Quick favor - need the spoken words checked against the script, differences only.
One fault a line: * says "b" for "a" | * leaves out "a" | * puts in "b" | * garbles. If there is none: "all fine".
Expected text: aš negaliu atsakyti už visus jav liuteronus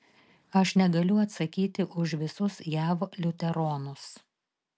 all fine